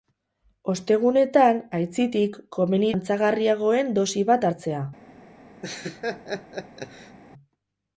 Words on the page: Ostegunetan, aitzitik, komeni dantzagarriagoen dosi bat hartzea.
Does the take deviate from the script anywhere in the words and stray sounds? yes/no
yes